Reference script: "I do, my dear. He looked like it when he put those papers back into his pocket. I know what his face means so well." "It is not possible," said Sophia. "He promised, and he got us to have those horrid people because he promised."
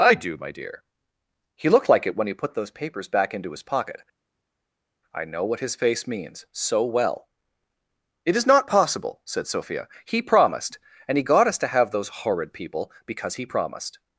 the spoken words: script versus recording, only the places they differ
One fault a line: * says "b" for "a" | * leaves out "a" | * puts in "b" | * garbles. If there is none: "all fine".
all fine